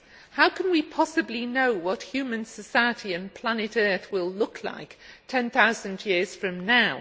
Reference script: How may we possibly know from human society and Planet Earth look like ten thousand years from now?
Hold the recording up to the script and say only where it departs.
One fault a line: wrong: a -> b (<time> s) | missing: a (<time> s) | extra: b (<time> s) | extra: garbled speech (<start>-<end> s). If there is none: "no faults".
wrong: may -> can (0.5 s)
wrong: from -> what (1.7 s)
extra: will (4.1 s)